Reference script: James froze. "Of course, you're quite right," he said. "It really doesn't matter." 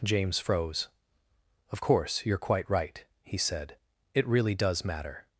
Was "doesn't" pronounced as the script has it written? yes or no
no